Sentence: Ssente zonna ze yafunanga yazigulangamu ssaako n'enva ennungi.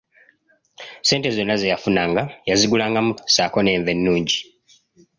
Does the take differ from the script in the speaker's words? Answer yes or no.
no